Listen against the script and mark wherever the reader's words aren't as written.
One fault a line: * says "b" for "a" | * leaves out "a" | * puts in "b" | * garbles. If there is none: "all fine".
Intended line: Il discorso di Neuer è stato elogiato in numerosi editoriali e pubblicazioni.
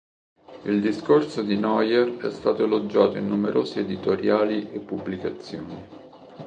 all fine